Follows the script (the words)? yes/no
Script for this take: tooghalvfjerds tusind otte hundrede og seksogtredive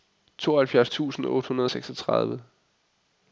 yes